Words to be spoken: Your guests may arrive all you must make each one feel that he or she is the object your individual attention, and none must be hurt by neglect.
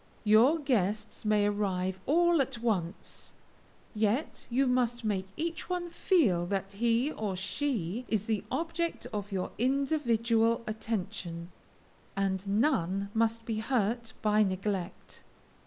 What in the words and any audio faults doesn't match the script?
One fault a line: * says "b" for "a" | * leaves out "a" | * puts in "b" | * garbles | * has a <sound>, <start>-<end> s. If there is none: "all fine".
* puts in "at once yet"
* puts in "of"